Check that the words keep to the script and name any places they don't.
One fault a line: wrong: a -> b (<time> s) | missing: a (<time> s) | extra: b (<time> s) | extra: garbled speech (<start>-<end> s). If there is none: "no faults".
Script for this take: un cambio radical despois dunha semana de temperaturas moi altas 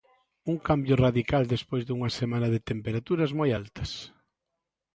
no faults